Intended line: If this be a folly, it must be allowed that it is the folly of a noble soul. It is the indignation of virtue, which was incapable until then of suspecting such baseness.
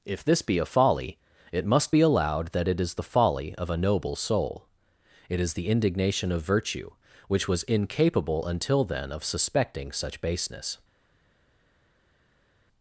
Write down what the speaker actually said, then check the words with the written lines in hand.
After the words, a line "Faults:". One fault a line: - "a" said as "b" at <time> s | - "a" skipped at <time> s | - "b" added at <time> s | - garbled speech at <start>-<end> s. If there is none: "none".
If this be a folly, it must be allowed that it is the folly of a noble soul. It is the indignation of virtue, which was incapable until then of suspecting such baseness.
Faults:
none